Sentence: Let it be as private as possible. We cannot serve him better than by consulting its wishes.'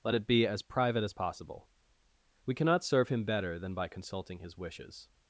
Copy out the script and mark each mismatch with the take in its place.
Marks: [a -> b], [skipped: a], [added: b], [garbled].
Let it be as private as possible. We cannot serve him better than by consulting [its -> his] wishes.'